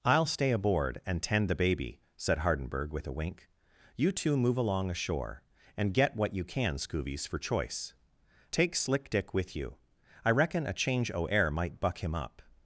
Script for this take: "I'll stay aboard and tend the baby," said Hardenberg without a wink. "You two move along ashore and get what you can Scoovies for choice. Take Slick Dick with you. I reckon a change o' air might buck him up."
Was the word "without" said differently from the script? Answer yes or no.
yes